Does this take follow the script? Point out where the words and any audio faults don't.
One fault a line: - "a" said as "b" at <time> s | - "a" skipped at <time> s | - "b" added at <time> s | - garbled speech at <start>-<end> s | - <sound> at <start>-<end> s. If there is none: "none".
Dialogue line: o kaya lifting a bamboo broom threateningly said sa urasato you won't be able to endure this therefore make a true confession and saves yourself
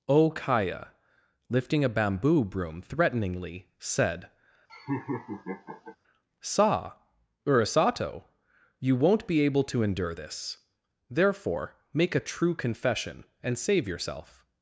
- laugh at 4.7-6.0 s
- "saves" said as "save" at 13.6 s